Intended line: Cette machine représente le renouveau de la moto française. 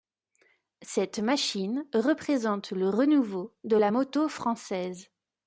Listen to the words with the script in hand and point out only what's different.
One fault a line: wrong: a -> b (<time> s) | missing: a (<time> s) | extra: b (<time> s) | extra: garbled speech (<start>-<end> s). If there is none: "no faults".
no faults